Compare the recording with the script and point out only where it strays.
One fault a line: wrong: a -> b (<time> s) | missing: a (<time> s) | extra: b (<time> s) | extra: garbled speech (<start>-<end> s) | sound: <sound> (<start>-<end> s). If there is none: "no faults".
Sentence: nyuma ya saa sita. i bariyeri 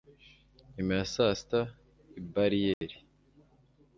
sound: dropout (2.7-2.8 s)